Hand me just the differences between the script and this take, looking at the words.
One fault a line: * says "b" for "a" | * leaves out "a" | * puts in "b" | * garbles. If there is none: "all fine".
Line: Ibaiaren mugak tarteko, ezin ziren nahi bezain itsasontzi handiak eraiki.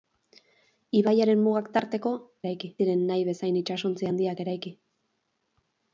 * says "eraiki" for "ezin"